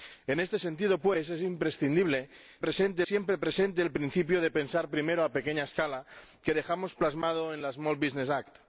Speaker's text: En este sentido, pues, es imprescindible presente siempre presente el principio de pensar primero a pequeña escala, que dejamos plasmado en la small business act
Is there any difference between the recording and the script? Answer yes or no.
no